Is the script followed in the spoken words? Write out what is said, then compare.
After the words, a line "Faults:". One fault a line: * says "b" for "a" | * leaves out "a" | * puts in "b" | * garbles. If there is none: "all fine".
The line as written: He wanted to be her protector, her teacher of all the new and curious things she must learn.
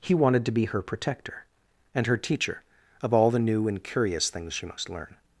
He wanted to be her protector, and her teacher of all the new and curious things she must learn.
Faults:
* puts in "and"